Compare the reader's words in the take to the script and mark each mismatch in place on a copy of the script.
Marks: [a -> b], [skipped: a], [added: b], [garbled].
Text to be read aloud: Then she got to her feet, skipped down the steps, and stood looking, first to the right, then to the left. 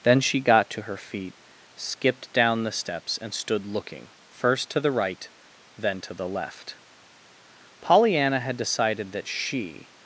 Then she got to her feet, skipped down the steps, and stood looking, first to the right, then to the left. [added: Pollyanna had decided that she]